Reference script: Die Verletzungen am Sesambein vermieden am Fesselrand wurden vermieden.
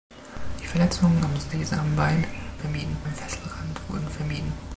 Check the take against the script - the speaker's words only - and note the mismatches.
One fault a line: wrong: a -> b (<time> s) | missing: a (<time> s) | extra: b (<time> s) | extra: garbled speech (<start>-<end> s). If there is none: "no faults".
no faults